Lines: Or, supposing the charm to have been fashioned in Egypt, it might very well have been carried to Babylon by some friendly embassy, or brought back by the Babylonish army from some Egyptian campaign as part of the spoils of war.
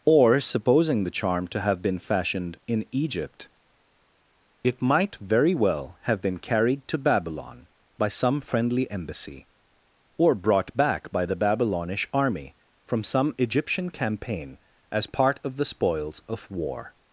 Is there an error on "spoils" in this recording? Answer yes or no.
no